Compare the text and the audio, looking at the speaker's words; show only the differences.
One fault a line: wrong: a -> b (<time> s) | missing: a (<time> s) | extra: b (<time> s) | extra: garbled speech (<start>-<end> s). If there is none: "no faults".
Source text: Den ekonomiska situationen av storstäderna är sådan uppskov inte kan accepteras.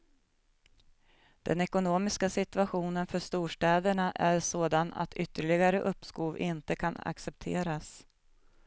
wrong: av -> för (3.1 s)
extra: att ytterligare (4.9 s)